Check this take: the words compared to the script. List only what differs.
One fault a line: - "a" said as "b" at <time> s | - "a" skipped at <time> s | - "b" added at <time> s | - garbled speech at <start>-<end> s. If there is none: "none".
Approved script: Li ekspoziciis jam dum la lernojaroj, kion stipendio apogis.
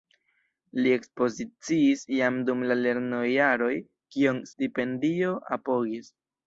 none